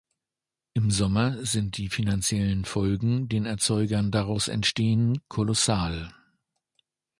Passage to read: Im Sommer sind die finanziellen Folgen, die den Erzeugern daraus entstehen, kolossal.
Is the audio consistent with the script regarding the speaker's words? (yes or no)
no